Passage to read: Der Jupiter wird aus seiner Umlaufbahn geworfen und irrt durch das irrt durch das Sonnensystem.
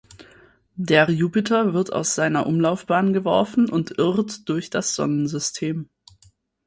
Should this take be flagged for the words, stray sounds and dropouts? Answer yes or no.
yes